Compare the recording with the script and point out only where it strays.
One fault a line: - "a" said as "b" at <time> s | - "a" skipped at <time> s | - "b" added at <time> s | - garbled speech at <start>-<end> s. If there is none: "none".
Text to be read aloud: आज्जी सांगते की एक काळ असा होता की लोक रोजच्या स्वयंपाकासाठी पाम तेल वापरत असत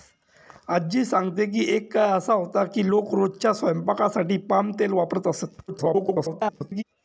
- garbled speech at 5.7-6.8 s